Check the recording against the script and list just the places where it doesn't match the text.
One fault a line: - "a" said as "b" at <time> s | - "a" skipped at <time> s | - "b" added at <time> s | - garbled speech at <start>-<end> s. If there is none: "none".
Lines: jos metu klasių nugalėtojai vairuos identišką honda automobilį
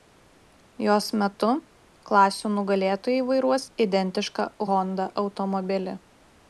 none